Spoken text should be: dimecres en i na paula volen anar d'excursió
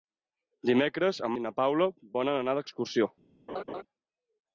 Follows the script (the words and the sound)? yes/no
no